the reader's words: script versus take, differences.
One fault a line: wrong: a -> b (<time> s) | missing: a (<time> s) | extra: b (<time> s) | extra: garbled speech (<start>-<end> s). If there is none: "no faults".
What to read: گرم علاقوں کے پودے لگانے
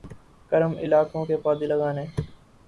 no faults